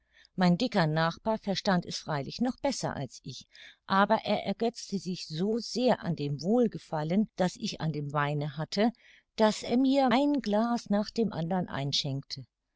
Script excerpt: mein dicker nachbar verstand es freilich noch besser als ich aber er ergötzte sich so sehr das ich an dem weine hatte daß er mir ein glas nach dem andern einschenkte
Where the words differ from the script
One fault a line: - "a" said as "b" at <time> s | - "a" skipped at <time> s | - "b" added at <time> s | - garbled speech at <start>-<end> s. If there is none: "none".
- "an dem wohlgefallen" added at 6.0 s